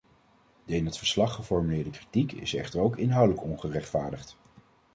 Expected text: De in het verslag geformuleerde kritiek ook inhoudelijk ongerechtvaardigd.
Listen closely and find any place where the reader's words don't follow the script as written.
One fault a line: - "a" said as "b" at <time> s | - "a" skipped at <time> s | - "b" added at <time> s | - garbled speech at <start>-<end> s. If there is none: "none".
- "is echter" added at 2.3 s